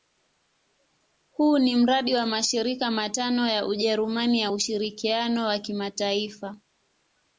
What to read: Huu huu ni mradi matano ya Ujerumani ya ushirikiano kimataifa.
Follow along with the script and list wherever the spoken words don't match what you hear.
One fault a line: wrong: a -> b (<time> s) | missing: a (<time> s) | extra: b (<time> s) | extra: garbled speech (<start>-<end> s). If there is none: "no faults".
missing: huu (1.6 s)
extra: wa mashirika (2.1 s)
extra: wa (5.4 s)